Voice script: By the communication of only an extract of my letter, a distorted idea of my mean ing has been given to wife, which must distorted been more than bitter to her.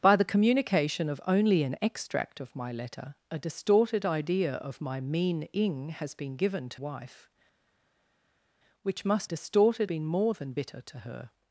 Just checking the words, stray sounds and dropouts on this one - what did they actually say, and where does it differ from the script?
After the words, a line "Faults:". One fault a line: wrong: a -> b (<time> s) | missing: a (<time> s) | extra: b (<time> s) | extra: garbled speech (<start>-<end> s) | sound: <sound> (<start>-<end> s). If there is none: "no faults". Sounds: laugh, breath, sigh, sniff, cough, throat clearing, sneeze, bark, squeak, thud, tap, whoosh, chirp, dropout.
By the communication of only an extract of my letter, a distorted idea of my mean ing has been given to wife, which must distorted been more than bitter to her.
Faults:
no faults